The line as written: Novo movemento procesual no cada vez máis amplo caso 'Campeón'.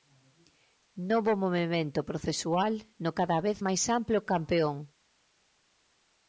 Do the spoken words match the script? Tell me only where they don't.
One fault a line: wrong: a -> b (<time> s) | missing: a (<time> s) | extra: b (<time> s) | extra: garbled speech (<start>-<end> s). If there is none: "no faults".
missing: caso (4.2 s)